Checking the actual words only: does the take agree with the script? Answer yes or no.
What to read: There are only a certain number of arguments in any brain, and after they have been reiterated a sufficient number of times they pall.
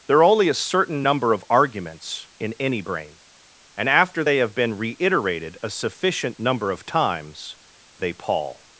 yes